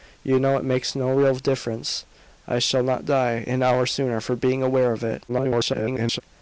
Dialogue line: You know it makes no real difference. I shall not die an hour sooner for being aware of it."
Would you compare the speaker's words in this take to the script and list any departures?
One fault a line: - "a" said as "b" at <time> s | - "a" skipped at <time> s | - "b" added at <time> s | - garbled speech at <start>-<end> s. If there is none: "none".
- garbled speech at 5.3-6.2 s